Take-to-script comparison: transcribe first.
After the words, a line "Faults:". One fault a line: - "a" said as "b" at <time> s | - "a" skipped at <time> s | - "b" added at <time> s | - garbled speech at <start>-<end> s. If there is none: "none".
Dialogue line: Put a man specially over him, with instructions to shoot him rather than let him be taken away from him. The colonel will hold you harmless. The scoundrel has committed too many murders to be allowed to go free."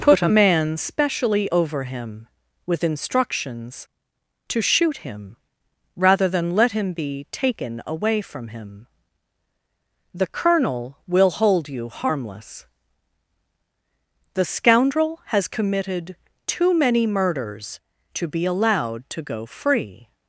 Put a man specially over him, with instructions to shoot him rather than let him be taken away from him. The colonel will hold you harmless. The scoundrel has committed too many murders to be allowed to go free."
Faults:
none